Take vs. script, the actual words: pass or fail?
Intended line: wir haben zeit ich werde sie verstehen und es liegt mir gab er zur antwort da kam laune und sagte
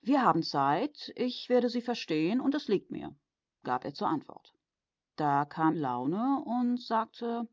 pass